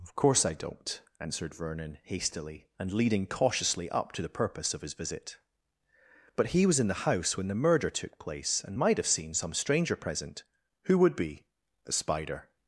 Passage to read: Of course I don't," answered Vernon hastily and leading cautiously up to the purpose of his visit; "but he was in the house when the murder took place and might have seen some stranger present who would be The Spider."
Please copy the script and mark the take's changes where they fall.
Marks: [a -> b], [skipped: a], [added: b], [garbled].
Of course I don't," answered Vernon hastily and leading cautiously up to the purpose of his visit; "but he was in the house when the murder took place and might have seen some stranger present who would be The Spider."